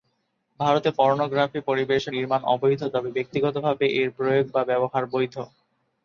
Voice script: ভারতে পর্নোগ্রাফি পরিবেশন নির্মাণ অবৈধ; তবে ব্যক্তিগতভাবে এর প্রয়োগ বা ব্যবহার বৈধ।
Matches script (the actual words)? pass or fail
pass